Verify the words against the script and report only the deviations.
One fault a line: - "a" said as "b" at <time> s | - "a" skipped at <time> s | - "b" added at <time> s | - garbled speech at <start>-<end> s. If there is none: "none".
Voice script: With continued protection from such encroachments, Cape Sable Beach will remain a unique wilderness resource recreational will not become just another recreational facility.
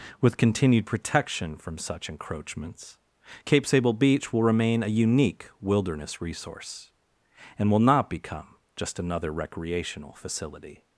- "recreational" said as "and" at 7.6 s